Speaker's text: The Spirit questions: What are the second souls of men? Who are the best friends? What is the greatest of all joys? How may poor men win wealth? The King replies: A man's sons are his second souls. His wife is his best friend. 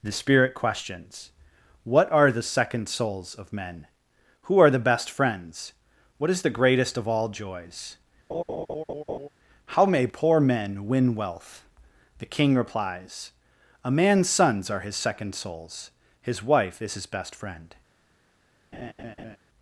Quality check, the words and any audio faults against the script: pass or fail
fail